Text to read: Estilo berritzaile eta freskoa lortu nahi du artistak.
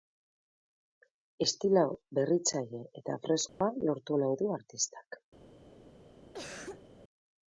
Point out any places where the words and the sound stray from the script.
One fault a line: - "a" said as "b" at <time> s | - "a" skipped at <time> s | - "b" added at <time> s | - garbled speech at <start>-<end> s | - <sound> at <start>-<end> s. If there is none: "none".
- dropout at 3.5-3.6 s
- cough at 6.3-6.8 s